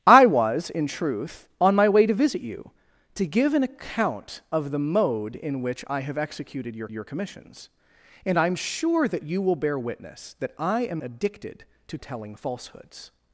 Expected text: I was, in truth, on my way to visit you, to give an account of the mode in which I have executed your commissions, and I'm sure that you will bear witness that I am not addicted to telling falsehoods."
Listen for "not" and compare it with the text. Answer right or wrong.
wrong